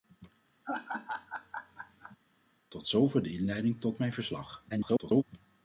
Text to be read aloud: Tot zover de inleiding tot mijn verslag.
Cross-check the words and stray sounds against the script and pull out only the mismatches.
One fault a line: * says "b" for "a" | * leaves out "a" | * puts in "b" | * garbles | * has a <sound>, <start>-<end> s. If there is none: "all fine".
* has a laugh, 0.6-2.2 s
* garbles